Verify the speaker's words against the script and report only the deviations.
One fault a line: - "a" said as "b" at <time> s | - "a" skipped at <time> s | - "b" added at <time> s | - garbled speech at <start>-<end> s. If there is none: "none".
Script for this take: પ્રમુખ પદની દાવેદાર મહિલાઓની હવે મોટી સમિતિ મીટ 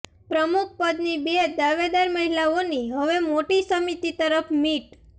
- "બે" added at 1.2 s
- "તરફ" added at 4.2 s